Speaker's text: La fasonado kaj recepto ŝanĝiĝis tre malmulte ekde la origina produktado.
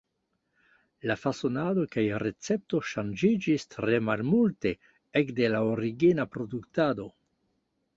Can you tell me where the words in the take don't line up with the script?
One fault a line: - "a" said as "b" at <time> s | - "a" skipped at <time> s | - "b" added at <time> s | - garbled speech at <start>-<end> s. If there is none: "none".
none